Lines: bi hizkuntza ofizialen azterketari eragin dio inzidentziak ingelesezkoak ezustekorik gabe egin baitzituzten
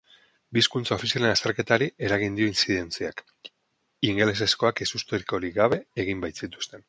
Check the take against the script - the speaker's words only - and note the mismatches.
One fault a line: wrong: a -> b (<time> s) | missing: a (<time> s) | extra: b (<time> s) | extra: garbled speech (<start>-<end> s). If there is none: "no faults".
no faults